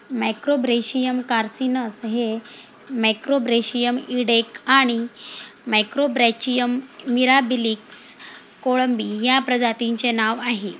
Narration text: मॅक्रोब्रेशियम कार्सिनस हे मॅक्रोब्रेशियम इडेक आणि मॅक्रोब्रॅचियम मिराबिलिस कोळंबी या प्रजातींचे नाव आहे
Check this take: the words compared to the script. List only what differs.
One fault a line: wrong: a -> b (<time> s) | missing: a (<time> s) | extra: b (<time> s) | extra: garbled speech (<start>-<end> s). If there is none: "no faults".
no faults